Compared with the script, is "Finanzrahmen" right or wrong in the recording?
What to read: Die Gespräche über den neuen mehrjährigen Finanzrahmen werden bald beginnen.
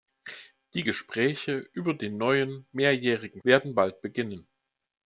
wrong